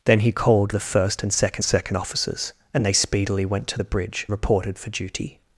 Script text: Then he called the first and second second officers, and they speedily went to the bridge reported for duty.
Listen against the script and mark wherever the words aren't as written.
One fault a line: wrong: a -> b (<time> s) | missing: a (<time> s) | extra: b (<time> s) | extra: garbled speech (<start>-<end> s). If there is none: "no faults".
no faults